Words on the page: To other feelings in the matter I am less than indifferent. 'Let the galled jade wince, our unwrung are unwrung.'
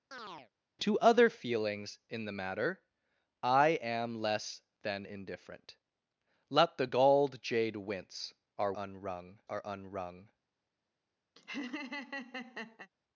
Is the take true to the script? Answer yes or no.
yes